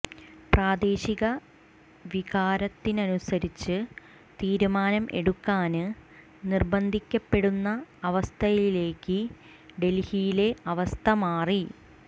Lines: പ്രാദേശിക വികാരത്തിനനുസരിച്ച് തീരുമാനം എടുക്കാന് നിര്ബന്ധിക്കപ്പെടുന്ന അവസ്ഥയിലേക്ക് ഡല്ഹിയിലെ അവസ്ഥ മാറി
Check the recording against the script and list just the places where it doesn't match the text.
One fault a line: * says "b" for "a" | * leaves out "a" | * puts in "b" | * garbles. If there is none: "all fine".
all fine